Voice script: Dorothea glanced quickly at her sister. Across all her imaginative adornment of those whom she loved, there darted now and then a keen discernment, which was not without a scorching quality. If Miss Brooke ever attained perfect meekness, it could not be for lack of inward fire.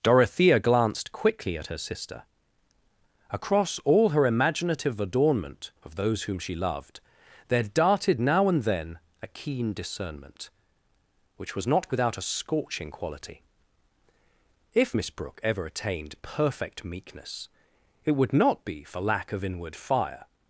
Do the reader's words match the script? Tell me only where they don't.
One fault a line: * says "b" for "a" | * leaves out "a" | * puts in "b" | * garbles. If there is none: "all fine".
* says "would" for "could"